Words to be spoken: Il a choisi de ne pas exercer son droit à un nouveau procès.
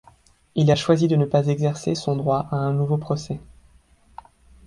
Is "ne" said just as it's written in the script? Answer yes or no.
yes